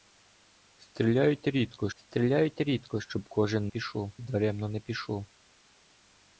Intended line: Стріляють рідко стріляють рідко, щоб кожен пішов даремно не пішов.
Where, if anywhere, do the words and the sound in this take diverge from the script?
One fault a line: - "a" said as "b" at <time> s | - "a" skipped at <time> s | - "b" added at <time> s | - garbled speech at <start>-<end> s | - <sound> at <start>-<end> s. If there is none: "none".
none